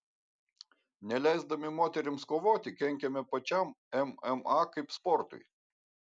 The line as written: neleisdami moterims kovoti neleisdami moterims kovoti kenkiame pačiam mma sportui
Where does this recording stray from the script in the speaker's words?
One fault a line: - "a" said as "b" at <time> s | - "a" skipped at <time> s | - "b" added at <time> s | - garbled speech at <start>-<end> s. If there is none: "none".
- "neleisdami moterims kovoti" skipped at 2.7 s
- "kaip" added at 4.8 s